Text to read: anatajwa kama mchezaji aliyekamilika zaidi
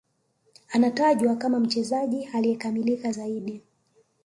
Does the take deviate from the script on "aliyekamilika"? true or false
false